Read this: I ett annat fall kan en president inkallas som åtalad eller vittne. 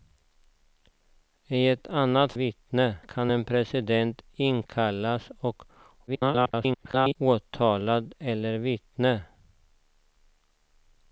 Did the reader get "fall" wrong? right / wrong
wrong